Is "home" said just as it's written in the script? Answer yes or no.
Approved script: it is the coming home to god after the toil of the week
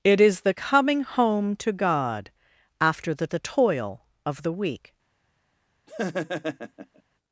yes